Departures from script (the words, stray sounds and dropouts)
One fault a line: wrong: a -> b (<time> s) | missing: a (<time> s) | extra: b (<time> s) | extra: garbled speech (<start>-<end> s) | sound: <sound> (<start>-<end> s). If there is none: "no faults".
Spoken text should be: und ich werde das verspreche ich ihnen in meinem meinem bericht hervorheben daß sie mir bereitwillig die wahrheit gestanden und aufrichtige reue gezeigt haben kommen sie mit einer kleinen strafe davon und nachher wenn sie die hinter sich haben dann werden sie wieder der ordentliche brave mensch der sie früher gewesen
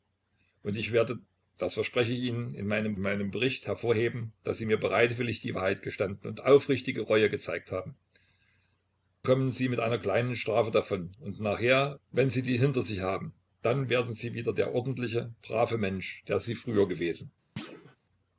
sound: thud (17.6-18.0 s)